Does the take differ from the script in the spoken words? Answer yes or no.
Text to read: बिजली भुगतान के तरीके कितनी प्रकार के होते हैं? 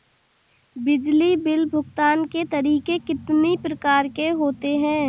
yes